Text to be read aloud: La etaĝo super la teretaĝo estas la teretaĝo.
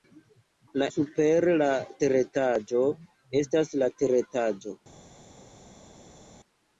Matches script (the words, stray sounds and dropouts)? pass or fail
fail